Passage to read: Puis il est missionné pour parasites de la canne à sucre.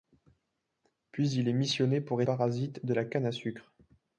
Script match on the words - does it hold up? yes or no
yes